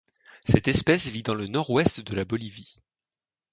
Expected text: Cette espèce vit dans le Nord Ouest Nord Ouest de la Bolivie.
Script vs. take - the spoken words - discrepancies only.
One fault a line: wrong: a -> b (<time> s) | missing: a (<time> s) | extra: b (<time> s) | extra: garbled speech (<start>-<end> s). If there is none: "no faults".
missing: Nord Ouest (2.0 s)